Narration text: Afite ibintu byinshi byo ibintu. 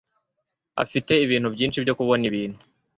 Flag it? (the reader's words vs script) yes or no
yes